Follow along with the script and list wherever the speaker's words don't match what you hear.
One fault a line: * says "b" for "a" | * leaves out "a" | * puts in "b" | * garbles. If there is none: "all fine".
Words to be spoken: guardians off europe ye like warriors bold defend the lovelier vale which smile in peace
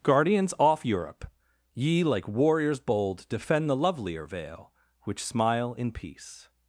all fine